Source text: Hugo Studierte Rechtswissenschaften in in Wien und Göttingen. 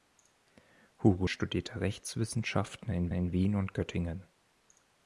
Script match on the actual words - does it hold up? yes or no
yes